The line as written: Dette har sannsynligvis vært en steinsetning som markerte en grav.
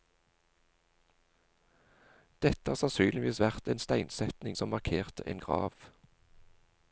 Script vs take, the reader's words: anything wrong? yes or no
no